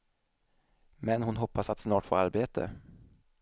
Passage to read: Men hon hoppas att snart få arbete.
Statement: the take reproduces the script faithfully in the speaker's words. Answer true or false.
true